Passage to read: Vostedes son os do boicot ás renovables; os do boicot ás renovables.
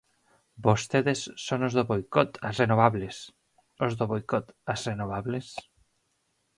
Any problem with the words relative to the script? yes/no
no